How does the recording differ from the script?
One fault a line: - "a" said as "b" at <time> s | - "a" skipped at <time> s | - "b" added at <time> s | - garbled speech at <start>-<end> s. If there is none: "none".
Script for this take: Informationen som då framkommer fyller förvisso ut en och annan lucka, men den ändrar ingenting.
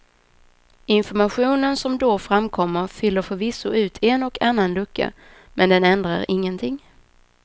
none